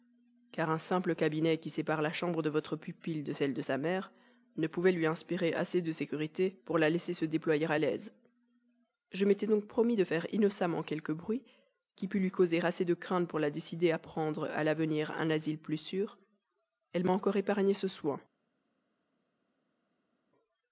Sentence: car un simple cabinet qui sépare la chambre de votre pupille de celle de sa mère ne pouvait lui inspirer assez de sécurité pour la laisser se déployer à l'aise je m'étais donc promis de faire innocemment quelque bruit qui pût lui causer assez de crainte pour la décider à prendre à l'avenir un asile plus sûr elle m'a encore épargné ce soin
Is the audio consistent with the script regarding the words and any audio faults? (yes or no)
yes